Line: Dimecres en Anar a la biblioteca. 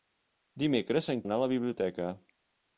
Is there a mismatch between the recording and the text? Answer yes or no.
no